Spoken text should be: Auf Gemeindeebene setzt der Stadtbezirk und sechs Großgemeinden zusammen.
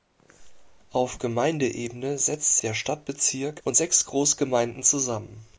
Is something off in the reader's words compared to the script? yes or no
no